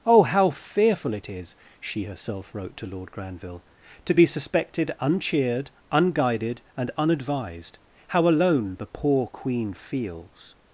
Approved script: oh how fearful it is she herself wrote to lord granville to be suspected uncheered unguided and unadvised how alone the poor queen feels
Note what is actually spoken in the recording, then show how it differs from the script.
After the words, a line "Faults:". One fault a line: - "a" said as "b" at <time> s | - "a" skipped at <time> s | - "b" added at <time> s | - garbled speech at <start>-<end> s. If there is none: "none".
oh how fearful it is she herself wrote to lord granville to be suspected uncheered unguided and unadvised how alone the poor queen feels
Faults:
none